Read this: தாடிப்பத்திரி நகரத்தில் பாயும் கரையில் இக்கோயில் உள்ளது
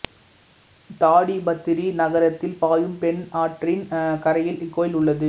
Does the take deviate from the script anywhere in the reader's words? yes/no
yes